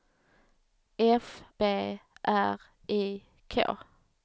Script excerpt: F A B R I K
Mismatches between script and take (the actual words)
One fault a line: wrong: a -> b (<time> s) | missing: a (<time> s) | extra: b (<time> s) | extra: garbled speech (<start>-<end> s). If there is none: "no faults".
missing: A (1.4 s)